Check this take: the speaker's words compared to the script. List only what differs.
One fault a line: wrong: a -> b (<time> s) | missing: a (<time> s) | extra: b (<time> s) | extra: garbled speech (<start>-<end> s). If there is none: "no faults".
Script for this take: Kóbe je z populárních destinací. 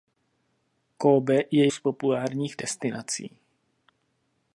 no faults